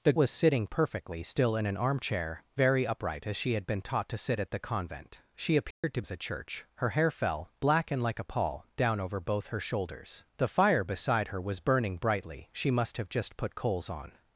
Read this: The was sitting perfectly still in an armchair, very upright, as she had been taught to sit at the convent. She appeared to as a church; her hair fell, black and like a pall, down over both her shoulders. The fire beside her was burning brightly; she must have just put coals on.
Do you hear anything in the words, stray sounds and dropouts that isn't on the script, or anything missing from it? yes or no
yes